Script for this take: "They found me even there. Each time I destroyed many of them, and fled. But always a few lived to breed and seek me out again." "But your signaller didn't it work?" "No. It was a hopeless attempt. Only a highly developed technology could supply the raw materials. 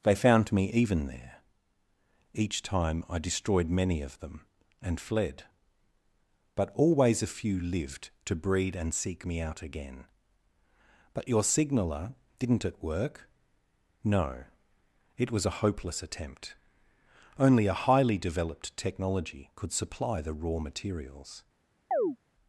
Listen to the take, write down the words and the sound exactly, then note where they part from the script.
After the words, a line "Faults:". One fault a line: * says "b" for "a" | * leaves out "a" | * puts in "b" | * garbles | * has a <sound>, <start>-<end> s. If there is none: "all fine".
"They found me even there. Each time I destroyed many of them, and fled. But always a few lived to breed and seek me out again." "But your signaller didn't it work?" "No. It was a hopeless attempt. Only a highly developed technology could supply the raw materials.
Faults:
* has a chirp, 21.9-22.2 s